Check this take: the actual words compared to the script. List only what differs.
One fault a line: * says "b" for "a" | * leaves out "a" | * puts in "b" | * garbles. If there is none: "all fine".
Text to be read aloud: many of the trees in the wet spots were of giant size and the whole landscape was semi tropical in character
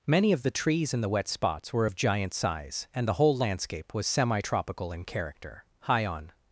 * puts in "high on"